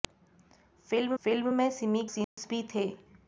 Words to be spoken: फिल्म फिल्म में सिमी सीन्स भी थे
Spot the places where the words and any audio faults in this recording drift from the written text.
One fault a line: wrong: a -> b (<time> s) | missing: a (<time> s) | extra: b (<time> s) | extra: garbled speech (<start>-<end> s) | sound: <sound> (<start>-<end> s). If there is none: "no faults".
sound: dropout (2.2-2.4 s)